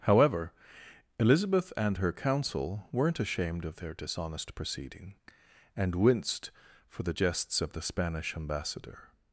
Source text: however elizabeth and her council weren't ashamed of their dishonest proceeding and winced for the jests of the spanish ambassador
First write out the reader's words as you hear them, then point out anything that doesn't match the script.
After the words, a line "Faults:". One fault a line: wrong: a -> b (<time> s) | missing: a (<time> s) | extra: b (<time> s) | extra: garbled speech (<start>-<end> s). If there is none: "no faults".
however elizabeth and her council weren't ashamed of their dishonest proceeding and winced for the jests of the spanish ambassador
Faults:
no faults